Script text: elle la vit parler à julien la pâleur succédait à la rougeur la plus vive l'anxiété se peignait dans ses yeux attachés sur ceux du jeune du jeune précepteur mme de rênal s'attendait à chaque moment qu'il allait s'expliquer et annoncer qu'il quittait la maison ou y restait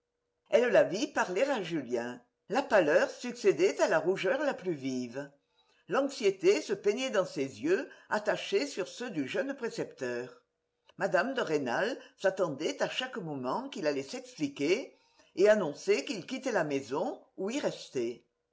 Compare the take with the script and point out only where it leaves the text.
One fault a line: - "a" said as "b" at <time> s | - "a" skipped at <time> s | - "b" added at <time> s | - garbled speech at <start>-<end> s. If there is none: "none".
- "du jeune" skipped at 9.5 s